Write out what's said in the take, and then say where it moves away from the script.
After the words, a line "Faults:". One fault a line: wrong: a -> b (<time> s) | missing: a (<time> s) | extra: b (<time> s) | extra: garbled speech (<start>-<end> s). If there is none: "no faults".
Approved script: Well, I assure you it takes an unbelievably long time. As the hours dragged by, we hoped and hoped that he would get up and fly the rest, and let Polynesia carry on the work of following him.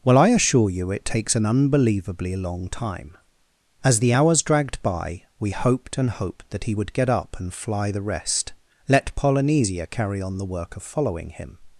Well, I assure you it takes an unbelievably long time. As the hours dragged by, we hoped and hoped that he would get up and fly the rest, let Polynesia carry on the work of following him.
Faults:
missing: and (8.5 s)